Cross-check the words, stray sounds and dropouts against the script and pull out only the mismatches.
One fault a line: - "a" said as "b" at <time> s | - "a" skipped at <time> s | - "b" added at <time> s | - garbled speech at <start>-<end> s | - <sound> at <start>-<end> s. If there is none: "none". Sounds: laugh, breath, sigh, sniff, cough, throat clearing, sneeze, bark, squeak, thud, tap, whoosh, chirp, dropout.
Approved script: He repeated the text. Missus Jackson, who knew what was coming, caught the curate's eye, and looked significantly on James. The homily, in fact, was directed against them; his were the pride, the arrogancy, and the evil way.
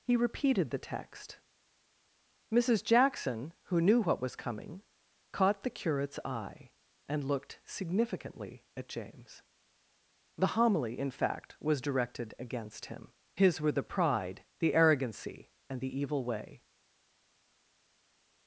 - "on" said as "at" at 8.8 s
- "them" said as "him" at 12.9 s